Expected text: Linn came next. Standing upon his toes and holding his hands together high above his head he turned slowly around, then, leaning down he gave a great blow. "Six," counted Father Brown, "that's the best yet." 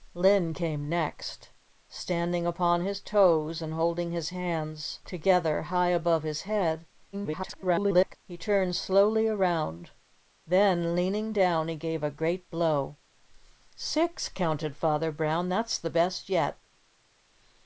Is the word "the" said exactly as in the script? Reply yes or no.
yes